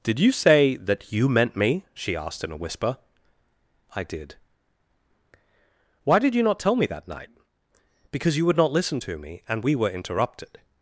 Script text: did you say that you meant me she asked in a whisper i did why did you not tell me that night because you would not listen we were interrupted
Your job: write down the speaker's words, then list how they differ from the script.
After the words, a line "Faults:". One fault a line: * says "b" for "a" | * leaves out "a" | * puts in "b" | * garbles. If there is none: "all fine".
did you say that you meant me she asked in a whisper i did why did you not tell me that night because you would not listen to me and we were interrupted
Faults:
* puts in "to me and"